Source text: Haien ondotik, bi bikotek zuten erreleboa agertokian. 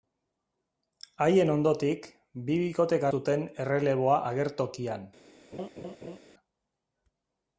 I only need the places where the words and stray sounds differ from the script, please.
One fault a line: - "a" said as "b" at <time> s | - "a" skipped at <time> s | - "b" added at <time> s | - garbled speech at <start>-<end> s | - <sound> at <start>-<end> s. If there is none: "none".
- laugh at 5.5-6.2 s